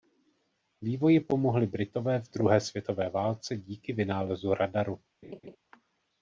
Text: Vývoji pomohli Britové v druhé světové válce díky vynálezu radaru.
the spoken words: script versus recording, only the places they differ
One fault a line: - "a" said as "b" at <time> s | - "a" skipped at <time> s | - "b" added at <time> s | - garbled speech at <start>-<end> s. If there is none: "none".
none